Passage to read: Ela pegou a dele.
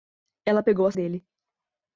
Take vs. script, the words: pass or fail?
pass